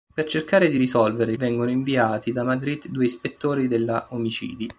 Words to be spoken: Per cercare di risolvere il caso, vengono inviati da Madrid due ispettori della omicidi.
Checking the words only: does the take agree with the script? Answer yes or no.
no